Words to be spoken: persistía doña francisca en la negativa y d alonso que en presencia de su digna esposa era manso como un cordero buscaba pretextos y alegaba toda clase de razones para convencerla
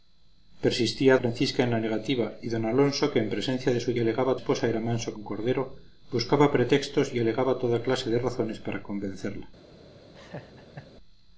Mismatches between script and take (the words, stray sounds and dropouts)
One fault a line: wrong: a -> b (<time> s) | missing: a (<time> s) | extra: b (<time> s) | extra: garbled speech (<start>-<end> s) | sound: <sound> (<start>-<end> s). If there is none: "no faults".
missing: doña (1.2 s)
wrong: digna -> alegaba (4.0 s)
missing: como (5.1 s)
sound: laugh (10.1-10.9 s)